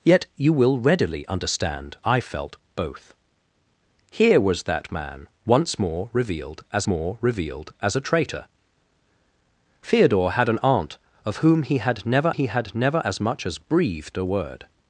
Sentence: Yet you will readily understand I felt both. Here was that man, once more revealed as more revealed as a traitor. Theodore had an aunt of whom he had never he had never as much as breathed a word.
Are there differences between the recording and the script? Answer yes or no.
no